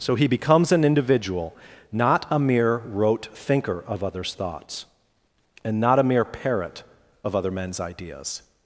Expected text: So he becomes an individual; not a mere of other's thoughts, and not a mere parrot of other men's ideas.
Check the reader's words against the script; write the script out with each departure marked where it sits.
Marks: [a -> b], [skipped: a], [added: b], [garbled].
So he becomes an individual; not a mere [added: rote thinker] of other's thoughts, and not a mere parrot of other men's ideas.